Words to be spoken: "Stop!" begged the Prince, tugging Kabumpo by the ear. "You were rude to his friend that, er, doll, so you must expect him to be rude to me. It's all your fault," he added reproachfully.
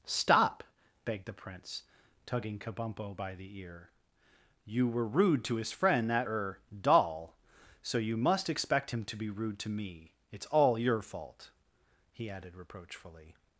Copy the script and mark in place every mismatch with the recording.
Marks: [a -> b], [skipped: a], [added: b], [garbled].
"Stop!" begged the Prince, tugging Kabumpo by the ear. "You were rude to his friend that, er, doll, so you must expect him to be rude to me. It's all your fault," he added reproachfully.